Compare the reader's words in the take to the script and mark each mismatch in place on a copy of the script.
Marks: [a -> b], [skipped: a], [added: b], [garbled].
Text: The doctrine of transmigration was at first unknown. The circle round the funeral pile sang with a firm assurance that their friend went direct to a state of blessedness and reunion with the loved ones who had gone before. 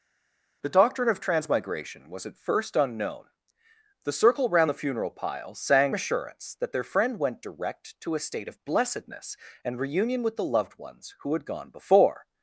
The doctrine of transmigration was at first unknown. The circle round the funeral pile sang [skipped: with a firm] assurance that their friend went direct to a state of blessedness and reunion with the loved ones who had gone before.